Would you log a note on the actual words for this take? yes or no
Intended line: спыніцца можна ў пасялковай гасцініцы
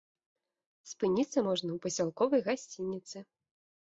no